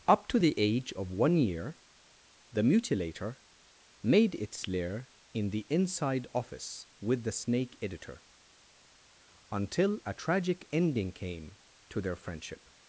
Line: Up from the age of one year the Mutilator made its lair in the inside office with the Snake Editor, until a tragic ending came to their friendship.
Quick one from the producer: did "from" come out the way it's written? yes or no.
no